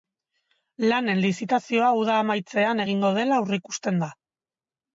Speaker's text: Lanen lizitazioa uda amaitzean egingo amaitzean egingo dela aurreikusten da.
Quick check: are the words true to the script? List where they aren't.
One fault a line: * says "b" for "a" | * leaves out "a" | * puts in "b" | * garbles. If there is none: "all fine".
* leaves out "amaitzean egingo"